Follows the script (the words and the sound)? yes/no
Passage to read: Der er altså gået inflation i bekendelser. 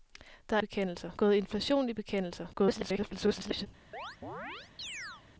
no